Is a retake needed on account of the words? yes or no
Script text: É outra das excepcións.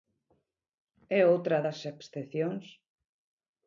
no